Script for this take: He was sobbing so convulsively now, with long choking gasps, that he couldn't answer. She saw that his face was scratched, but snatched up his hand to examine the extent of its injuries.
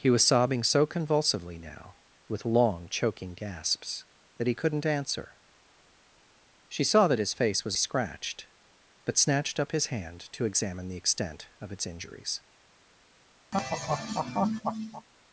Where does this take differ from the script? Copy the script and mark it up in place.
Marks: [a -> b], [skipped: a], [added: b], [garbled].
He was sobbing so convulsively now, with long choking gasps, that he couldn't answer. She saw that his face was scratched, but snatched up his hand to examine the extent of its injuries.